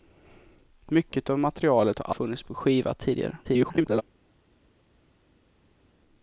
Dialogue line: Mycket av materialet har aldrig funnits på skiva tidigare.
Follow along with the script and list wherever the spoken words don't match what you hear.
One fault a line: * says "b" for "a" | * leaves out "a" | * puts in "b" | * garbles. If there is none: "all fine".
* leaves out "aldrig"
* garbles